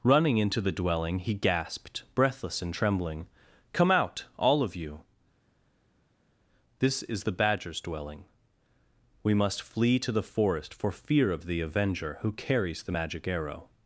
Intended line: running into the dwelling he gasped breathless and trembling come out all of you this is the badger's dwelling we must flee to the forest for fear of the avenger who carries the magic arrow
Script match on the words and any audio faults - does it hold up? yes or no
yes